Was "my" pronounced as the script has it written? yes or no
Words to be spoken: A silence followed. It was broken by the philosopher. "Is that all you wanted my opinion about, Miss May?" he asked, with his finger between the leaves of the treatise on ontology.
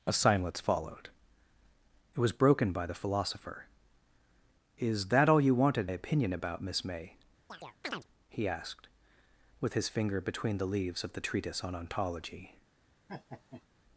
no